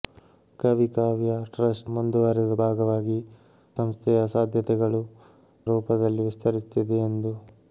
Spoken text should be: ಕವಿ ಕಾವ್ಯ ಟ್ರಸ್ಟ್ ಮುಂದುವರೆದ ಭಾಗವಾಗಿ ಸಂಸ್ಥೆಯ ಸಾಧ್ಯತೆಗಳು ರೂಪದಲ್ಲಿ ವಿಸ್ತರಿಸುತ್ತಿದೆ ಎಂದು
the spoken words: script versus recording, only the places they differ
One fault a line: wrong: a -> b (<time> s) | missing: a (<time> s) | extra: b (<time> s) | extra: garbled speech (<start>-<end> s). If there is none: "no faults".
no faults